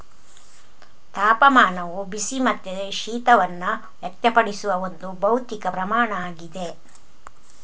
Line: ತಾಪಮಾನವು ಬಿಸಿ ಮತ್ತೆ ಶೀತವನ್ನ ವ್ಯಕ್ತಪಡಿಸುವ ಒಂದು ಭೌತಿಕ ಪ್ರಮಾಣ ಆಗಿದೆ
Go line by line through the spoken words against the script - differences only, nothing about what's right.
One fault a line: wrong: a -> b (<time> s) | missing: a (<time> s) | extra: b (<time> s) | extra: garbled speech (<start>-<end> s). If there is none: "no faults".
no faults